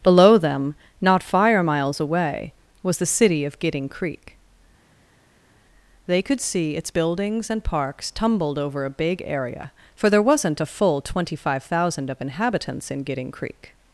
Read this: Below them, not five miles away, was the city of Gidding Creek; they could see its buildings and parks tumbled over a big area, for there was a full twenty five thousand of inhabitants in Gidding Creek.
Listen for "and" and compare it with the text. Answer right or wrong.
right